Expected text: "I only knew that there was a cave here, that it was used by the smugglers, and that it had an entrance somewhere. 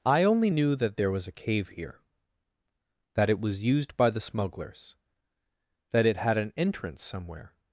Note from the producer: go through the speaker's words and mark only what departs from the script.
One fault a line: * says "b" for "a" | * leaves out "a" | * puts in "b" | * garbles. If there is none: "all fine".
* leaves out "and"